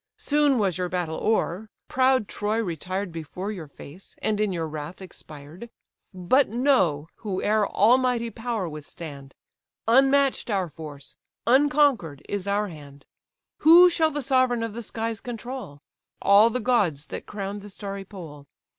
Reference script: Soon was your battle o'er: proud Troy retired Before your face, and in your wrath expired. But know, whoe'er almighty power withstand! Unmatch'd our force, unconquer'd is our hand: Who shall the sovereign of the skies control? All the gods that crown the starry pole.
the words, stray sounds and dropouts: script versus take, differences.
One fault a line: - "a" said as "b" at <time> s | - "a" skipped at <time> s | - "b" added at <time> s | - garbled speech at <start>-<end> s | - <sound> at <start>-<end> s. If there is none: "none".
none